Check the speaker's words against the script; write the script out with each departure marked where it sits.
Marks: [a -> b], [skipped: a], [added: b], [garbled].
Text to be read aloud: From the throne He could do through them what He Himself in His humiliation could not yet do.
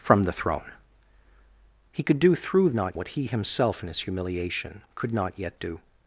From the throne He could do through [them -> not] what He Himself in His humiliation could not yet do.